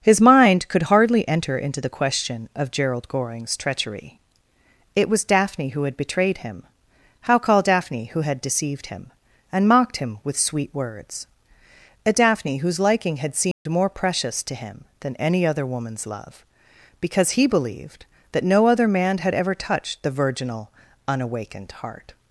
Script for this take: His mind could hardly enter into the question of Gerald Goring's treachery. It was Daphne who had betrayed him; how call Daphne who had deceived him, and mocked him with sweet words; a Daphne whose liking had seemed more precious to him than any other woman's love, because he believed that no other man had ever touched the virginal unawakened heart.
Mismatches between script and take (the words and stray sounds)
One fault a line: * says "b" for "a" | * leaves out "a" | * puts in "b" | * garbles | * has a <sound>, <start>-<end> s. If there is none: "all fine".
* has a dropout, 13.5-13.7 s